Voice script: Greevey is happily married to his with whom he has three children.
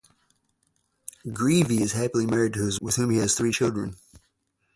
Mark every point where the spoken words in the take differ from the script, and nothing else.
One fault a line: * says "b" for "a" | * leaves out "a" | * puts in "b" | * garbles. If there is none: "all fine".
all fine